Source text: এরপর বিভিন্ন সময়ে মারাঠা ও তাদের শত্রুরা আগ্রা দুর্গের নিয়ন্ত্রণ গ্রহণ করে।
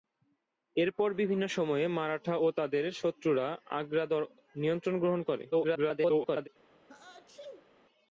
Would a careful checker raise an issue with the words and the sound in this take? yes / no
yes